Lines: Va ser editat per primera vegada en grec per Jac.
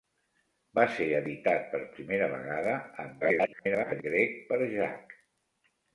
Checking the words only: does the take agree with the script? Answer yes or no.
no